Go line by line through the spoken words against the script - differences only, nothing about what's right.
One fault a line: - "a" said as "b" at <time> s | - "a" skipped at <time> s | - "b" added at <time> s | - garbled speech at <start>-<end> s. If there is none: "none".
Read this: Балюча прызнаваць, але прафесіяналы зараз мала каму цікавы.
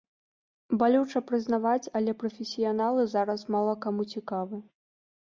none